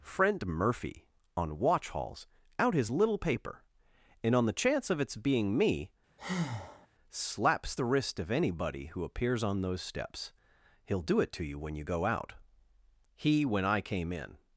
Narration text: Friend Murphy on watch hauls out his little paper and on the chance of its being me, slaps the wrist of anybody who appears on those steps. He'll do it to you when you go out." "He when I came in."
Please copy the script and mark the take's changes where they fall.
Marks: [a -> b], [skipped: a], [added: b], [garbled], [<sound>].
Friend Murphy on watch hauls out his little paper and on the chance of its being me, [breath] slaps the wrist of anybody who appears on those steps. He'll do it to you when you go out." "He when I came in."